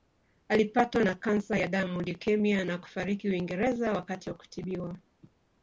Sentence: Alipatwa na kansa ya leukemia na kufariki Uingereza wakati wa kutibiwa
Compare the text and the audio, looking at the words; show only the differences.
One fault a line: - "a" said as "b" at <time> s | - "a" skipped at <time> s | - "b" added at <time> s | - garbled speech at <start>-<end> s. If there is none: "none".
- "damu" added at 1.7 s